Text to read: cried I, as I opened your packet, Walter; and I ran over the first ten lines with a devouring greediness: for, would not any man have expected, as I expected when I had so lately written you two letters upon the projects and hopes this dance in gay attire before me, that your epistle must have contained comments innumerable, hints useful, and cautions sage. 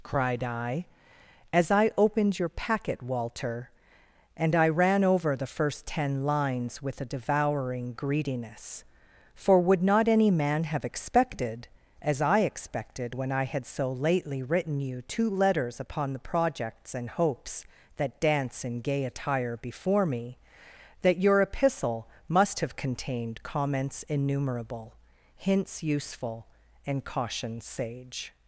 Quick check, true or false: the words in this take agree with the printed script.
false